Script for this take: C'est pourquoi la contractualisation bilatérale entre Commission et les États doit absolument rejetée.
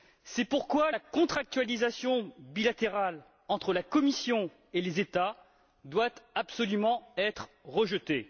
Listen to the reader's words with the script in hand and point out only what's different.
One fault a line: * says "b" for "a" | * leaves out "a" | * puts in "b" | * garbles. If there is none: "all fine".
* puts in "la"
* puts in "être"